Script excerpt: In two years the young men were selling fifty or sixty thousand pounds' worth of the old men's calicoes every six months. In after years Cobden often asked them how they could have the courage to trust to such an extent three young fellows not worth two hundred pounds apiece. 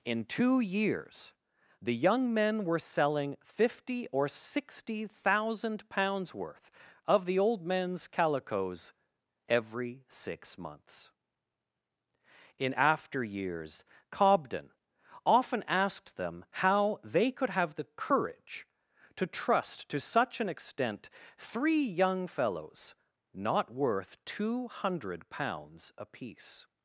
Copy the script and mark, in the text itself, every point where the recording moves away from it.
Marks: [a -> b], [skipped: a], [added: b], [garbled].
In two years the young men were selling fifty or sixty thousand pounds' worth of the old men's calicoes every six months. In after years Cobden often asked them how they could have the courage to trust to such an extent three young fellows not worth two hundred pounds apiece.